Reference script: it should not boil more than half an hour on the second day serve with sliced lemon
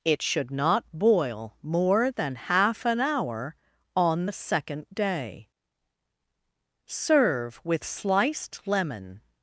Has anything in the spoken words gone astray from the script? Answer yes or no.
no